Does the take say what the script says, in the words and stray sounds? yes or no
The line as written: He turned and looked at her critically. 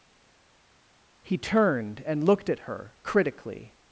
yes